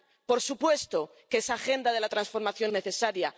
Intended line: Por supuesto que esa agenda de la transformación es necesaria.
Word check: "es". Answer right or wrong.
wrong